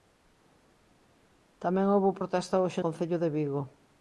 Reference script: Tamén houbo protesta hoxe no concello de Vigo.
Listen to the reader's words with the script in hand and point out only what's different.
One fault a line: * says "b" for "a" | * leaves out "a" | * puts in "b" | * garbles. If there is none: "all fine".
* leaves out "no"